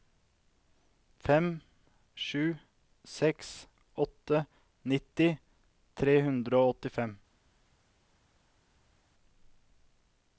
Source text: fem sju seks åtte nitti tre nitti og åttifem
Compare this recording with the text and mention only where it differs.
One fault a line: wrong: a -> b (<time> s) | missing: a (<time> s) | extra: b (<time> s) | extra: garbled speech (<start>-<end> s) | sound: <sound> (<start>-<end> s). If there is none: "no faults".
wrong: nitti -> hundre (6.3 s)